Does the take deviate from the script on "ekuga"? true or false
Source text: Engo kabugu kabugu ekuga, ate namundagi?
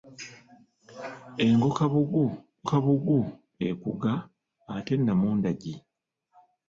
false